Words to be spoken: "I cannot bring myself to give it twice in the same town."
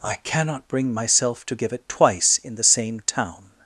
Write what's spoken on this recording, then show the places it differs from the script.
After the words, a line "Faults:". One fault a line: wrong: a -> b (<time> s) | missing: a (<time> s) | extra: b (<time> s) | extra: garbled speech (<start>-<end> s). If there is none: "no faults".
"I cannot bring myself to give it twice in the same town."
Faults:
no faults